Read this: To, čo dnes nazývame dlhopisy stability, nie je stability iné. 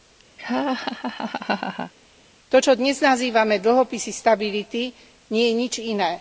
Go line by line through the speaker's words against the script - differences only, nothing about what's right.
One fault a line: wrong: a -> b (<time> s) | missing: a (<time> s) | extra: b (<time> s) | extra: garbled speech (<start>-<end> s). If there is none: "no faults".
wrong: stability -> nič (5.6 s)